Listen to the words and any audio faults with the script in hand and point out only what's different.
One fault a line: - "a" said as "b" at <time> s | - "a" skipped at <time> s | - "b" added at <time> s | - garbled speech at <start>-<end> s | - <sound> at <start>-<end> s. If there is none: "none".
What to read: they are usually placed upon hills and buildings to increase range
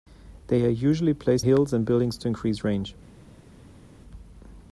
- "upon" skipped at 1.5 s